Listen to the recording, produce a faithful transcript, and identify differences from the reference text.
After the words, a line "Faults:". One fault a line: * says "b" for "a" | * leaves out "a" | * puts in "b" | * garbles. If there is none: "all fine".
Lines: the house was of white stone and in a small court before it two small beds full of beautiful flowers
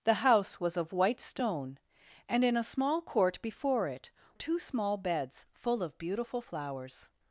the house was of white stone and in a small court before it two small beds full of beautiful flowers
Faults:
all fine